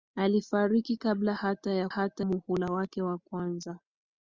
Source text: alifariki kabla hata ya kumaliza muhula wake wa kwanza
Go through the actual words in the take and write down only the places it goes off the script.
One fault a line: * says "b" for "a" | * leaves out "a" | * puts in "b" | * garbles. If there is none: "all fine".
* says "hata" for "kumaliza"